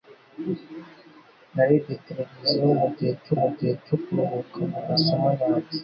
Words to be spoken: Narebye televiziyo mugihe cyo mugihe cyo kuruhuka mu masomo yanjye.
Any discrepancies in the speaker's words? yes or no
no